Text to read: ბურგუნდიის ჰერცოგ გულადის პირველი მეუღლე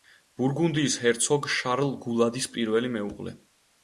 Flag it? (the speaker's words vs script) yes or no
yes